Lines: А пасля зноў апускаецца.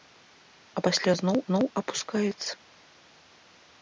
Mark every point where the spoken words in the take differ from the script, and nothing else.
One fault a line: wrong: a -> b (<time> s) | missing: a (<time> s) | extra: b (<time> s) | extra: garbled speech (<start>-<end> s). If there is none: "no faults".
extra: зноў (1.5 s)